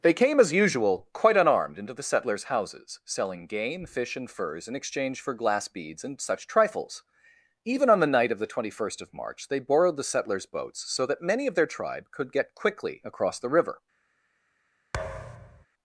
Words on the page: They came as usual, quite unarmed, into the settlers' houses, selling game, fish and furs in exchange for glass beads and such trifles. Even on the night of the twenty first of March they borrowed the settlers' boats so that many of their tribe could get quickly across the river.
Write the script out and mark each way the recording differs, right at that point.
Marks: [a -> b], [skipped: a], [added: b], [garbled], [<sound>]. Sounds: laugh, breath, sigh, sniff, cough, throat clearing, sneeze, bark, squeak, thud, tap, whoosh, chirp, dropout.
They came as usual, quite unarmed, into the settlers' houses, selling game, fish and furs in exchange for glass beads and such trifles. Even on the night of the twenty first of March they borrowed the settlers' boats so that many of their tribe could get quickly across the river. [thud]